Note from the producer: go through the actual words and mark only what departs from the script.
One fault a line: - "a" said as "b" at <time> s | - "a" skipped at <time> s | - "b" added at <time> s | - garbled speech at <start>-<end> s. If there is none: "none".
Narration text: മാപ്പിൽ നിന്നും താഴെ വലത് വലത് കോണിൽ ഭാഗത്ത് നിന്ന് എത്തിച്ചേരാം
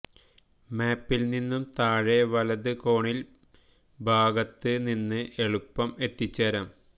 - "വലത്" skipped at 2.7 s
- "എളുപ്പം" added at 5.4 s